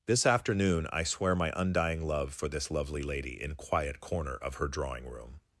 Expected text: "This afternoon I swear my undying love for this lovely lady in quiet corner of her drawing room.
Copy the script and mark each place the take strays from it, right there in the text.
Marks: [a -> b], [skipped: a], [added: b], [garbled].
"This afternoon I swear my undying love for this lovely lady in quiet corner of her drawing room.